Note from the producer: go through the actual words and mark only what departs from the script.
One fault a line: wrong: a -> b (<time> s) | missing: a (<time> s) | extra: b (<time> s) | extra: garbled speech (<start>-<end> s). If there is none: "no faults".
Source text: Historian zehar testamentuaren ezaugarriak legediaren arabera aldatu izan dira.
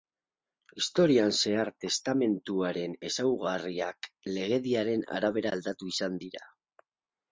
no faults